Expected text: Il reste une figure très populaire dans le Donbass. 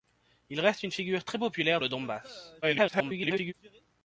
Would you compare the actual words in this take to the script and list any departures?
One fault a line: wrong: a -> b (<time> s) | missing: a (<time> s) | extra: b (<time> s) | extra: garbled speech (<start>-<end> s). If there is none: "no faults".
missing: dans (1.8 s)
extra: garbled speech (2.6-3.5 s)